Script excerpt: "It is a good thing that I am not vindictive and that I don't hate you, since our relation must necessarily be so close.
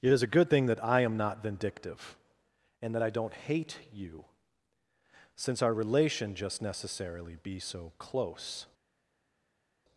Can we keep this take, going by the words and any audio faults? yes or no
no